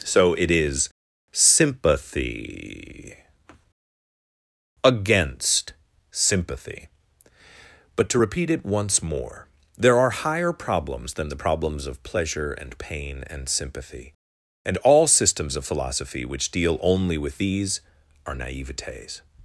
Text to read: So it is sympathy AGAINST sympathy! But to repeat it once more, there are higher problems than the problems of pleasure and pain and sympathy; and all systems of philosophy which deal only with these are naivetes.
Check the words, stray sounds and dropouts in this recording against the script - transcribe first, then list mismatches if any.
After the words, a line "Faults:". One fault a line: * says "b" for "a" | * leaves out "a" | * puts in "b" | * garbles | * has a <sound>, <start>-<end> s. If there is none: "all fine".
So it is sympathy AGAINST sympathy! But to repeat it once more, there are higher problems than the problems of pleasure and pain and sympathy; and all systems of philosophy which deal only with these are naivetes.
Faults:
all fine